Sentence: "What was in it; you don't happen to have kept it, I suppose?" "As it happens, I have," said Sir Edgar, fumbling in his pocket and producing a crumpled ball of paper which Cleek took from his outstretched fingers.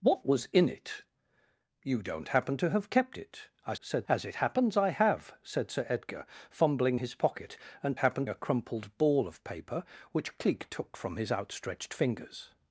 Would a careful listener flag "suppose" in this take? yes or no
yes